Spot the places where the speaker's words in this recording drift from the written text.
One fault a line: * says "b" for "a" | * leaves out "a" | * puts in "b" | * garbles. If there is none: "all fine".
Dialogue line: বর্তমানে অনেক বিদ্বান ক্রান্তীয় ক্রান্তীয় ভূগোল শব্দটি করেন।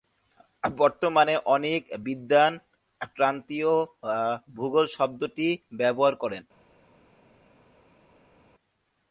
* leaves out "ক্রান্তীয়"
* puts in "ব্যবহার"